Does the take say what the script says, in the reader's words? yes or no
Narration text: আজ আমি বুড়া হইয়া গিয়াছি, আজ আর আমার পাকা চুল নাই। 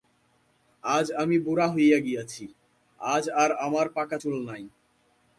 yes